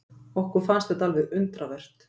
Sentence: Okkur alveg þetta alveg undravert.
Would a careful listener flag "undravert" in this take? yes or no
no